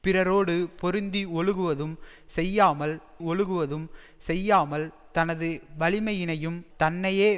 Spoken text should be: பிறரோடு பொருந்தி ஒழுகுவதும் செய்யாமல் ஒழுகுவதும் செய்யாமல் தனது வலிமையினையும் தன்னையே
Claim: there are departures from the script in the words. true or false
false